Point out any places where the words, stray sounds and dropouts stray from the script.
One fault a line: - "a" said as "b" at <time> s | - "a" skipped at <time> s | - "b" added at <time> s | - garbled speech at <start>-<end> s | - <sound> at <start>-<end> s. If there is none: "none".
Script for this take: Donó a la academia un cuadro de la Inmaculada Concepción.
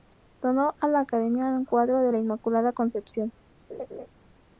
- laugh at 3.7-4.1 s